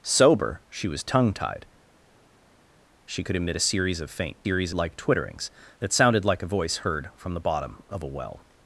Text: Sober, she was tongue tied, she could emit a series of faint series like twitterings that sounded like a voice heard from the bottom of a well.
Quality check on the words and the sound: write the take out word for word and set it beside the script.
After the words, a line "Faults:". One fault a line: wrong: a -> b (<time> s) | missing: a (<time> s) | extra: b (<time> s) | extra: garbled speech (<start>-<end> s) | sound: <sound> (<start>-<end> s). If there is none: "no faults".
Sober, she was tongue tied, she could emit a series of faint series like twitterings that sounded like a voice heard from the bottom of a well.
Faults:
no faults